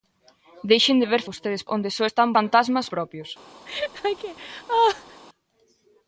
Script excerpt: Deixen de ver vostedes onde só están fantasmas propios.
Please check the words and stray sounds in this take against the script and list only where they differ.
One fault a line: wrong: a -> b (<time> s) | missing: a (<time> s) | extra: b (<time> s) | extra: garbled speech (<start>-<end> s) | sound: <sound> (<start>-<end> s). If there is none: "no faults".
sound: laugh (3.7-5.2 s)